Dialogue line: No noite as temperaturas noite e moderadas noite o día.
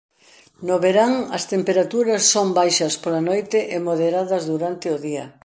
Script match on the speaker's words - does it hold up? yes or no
no